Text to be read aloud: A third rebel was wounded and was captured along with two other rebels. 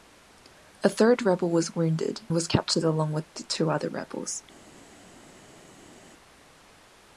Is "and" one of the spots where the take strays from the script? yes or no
yes